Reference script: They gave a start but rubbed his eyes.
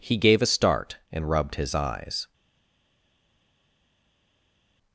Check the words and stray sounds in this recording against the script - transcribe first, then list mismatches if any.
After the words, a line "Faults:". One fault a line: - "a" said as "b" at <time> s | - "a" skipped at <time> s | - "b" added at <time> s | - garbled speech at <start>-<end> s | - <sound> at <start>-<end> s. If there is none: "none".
He gave a start and rubbed his eyes.
Faults:
- "They" said as "He" at 0.0 s
- "but" said as "and" at 1.1 s